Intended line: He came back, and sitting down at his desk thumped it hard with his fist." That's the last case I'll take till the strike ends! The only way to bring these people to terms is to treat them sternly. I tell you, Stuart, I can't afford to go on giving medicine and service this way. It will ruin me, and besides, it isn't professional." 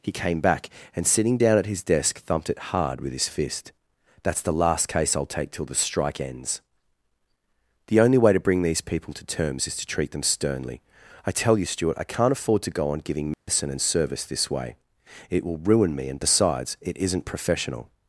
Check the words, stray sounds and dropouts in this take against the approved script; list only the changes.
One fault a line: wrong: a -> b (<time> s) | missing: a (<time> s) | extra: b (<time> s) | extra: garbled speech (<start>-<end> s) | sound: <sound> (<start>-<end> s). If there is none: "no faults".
sound: dropout (13.3-13.5 s)